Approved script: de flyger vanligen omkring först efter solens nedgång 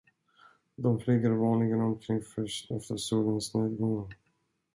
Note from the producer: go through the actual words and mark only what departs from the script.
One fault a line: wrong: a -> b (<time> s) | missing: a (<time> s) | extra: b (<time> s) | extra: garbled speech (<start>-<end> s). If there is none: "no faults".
no faults